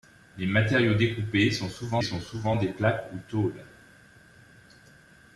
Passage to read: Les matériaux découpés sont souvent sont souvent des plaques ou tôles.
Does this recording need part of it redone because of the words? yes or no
no